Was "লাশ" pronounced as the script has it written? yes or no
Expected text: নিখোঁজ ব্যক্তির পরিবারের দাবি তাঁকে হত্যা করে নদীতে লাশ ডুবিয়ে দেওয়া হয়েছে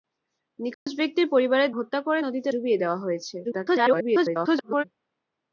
no